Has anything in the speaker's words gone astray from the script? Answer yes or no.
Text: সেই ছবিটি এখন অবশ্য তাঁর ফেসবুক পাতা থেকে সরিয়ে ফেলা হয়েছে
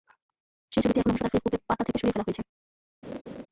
no